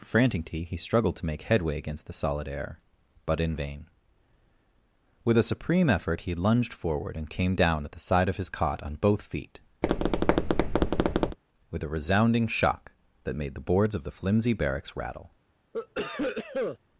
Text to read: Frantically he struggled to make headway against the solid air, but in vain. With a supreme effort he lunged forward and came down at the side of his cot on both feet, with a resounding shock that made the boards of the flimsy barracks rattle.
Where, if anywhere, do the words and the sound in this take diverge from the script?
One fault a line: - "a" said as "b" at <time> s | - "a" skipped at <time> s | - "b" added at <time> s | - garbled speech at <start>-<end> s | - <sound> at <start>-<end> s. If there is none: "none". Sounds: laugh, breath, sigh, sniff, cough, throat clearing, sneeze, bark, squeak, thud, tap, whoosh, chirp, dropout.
- tap at 9.8-11.4 s
- cough at 15.7-16.8 s